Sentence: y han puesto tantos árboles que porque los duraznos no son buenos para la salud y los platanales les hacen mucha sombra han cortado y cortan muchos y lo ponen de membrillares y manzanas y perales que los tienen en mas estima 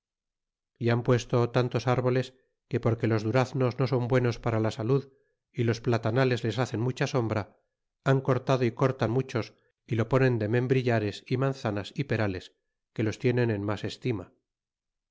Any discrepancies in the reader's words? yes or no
no